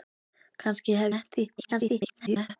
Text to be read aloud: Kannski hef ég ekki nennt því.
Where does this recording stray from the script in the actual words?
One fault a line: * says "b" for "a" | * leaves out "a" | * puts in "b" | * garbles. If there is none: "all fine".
* leaves out "ég ekki"
* garbles